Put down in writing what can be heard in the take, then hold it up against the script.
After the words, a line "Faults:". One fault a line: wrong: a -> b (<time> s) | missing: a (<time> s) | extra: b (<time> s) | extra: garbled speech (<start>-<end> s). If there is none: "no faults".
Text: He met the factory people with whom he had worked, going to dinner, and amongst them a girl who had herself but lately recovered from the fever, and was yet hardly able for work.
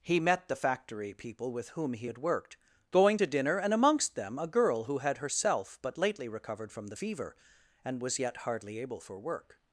He met the factory people with whom he had worked, going to dinner, and amongst them a girl who had herself but lately recovered from the fever, and was yet hardly able for work.
Faults:
no faults